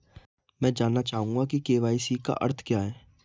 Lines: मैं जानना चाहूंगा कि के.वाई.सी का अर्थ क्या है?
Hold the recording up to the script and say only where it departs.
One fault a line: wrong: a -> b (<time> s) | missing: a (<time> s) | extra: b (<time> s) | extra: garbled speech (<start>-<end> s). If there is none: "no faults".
no faults